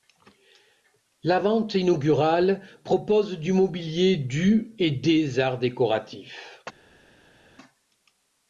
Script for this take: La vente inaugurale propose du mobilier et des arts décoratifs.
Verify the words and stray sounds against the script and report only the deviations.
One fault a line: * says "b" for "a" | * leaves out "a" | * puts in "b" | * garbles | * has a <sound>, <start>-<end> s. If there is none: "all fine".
* puts in "du"